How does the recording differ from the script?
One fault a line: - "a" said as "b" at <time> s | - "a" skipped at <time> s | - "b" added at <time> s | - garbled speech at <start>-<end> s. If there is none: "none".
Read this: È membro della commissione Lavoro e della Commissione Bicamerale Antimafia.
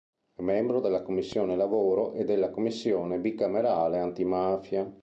none